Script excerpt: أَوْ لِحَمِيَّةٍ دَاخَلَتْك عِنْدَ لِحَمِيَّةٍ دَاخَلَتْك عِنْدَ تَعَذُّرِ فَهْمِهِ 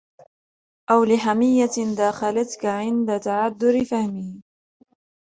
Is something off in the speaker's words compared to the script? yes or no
yes